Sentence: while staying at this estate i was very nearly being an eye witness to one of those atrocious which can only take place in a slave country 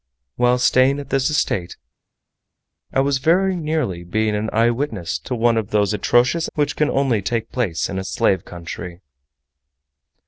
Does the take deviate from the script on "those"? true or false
false